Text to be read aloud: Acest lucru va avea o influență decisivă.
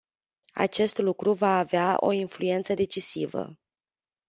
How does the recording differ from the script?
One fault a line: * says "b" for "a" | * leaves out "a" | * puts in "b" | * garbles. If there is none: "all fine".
all fine